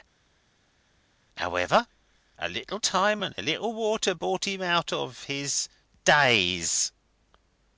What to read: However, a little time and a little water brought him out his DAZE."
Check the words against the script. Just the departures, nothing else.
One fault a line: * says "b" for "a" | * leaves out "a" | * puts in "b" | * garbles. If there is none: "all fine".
* puts in "of"